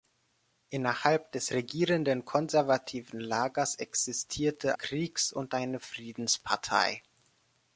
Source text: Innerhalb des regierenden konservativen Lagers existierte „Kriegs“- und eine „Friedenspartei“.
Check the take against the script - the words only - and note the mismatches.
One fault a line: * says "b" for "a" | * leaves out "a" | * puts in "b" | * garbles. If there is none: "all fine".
all fine